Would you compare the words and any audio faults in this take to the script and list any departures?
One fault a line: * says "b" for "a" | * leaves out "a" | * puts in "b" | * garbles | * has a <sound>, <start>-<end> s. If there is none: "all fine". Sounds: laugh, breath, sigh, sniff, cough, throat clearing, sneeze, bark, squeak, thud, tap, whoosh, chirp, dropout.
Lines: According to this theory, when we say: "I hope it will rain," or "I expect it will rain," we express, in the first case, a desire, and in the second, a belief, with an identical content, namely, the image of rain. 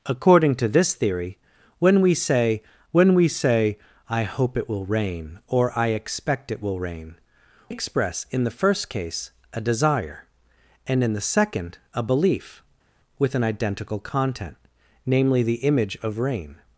* puts in "when we say"
* leaves out "we"